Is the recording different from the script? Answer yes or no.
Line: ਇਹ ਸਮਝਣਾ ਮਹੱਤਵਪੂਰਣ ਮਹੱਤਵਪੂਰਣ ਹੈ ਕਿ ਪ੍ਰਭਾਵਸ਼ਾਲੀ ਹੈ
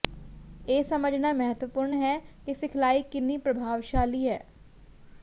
yes